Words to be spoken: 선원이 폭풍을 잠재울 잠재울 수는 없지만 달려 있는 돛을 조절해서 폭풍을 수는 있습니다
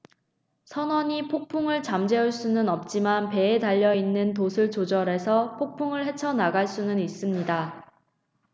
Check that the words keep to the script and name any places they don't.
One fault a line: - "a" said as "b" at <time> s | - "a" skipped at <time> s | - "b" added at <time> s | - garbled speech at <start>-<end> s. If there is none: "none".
- "잠재울" skipped at 2.3 s
- "배에" added at 3.3 s
- "헤쳐 나갈" added at 6.1 s